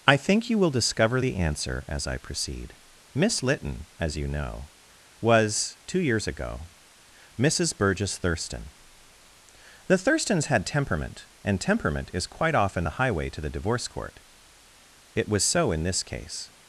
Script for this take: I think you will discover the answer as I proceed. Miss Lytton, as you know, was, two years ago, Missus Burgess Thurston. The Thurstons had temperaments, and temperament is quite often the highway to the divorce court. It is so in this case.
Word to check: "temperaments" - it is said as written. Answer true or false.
false